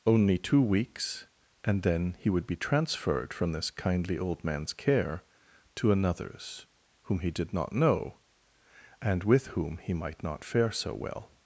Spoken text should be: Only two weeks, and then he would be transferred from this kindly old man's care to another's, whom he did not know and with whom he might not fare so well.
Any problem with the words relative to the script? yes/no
no